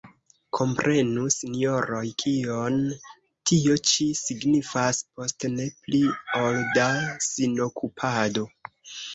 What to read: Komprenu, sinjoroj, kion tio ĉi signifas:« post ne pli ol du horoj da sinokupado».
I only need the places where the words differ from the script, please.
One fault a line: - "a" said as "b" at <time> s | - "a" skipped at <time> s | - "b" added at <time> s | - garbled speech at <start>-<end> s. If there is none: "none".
- "du horoj" skipped at 6.6 s